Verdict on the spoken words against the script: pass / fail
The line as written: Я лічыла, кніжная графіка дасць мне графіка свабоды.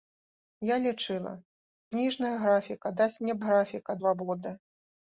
pass